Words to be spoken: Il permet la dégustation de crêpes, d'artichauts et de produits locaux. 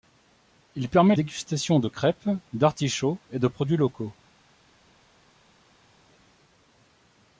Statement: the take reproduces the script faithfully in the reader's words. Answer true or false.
false